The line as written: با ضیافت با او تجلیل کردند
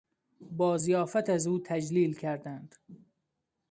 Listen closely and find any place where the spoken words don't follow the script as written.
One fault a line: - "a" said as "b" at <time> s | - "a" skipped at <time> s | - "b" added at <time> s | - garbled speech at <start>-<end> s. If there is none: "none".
- "با" said as "از" at 1.3 s